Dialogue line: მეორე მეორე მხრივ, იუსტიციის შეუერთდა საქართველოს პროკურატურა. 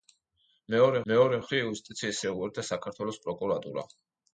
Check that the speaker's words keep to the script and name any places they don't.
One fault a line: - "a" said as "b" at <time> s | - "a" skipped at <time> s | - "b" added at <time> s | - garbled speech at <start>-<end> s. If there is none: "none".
none